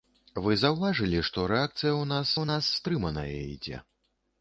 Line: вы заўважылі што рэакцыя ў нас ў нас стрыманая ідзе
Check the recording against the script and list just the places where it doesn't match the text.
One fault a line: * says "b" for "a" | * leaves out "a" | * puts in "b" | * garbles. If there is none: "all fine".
all fine